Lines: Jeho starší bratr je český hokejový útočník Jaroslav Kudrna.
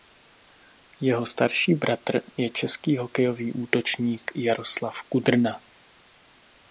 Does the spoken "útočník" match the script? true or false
true